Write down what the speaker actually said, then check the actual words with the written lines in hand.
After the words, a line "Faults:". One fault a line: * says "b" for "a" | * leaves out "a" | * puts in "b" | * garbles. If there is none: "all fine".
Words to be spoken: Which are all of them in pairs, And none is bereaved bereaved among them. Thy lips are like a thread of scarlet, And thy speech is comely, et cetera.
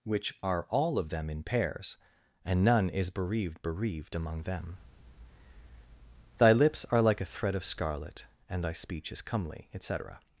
Which are all of them in pairs, And none is bereaved bereaved among them. Thy lips are like a thread of scarlet, And thy speech is comely, et cetera.
Faults:
all fine